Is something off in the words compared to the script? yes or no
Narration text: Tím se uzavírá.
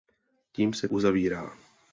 no